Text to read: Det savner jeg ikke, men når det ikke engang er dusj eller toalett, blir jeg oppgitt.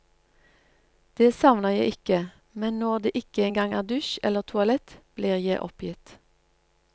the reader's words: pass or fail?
pass